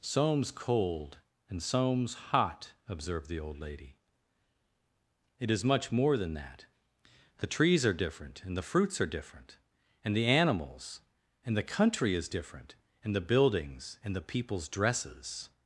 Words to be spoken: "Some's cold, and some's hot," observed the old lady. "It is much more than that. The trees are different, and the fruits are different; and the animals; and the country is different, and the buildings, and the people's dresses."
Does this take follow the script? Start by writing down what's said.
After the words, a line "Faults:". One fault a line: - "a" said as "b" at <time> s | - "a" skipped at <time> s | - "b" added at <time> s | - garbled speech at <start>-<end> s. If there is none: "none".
"Some's cold, and some's hot," observed the old lady. "It is much more than that. The trees are different, and the fruits are different; and the animals; and the country is different, and the buildings, and the people's dresses."
Faults:
none